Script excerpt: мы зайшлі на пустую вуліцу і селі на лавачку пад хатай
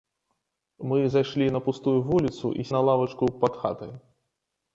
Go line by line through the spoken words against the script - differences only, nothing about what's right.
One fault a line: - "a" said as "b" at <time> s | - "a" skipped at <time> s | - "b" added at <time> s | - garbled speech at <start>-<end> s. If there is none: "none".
- "селі" skipped at 2.7 s